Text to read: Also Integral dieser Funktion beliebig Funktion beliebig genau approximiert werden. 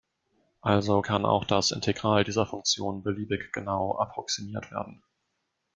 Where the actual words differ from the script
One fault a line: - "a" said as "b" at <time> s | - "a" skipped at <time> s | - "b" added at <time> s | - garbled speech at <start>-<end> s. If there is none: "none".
- "kann auch das" added at 1.0 s
- "Funktion beliebig" skipped at 3.5 s